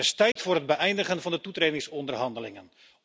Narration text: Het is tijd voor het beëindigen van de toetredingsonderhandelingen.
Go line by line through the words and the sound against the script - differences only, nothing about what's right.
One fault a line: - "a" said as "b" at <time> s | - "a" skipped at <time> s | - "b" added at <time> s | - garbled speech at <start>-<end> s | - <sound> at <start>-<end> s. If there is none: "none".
- dropout at 0.3-0.4 s